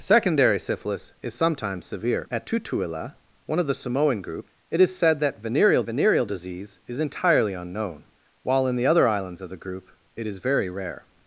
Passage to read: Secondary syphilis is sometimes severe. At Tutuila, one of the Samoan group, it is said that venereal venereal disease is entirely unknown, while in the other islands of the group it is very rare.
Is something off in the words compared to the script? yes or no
no